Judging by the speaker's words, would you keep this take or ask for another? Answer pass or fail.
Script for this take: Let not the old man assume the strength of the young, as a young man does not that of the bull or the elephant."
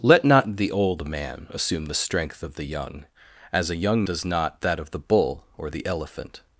fail